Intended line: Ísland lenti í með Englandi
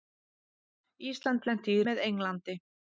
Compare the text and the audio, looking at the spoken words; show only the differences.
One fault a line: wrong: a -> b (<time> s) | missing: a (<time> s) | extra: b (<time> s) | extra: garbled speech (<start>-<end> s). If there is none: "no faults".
no faults